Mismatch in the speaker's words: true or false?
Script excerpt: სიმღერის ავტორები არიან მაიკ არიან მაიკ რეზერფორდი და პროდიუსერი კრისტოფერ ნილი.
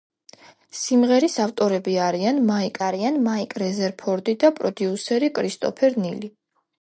false